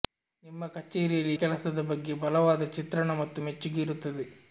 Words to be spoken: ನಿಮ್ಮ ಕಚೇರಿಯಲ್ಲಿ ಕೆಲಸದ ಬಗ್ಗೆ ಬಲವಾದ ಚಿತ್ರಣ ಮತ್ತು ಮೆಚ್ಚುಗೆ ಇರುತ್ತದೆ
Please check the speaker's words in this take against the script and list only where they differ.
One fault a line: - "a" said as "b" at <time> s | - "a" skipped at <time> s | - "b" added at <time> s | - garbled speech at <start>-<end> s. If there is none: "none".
none